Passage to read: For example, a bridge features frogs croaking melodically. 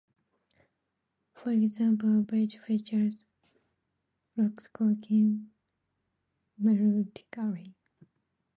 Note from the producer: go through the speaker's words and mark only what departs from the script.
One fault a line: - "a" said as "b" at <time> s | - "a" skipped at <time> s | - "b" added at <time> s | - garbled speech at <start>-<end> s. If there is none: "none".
none